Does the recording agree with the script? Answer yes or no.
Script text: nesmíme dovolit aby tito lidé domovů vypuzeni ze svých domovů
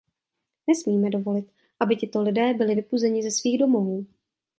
no